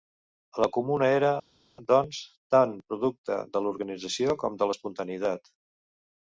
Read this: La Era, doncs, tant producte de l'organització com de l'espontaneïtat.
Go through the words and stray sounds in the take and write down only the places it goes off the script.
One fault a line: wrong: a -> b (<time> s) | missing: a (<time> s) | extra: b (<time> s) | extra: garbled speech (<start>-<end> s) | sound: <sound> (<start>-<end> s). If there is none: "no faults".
extra: Comuna (0.8 s)